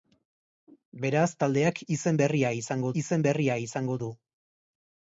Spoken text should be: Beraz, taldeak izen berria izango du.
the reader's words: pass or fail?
fail